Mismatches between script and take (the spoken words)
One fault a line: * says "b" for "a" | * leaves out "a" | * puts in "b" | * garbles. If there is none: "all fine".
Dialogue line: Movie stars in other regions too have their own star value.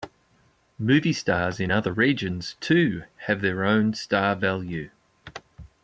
all fine